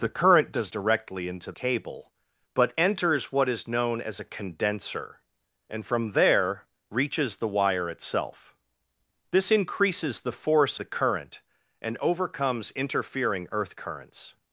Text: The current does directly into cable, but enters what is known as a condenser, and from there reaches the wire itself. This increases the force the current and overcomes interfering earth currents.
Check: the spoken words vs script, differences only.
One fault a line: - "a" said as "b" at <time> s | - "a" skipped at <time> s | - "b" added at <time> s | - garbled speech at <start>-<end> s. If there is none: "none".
none